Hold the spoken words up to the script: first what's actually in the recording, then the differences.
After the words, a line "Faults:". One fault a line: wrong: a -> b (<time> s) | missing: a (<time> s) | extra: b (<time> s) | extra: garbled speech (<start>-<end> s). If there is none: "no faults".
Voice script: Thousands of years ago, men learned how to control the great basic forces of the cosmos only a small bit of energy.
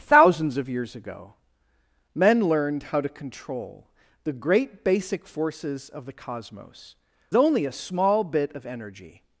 Thousands of years ago, men learned how to control the great basic forces of the cosmos only a small bit of energy.
Faults:
no faults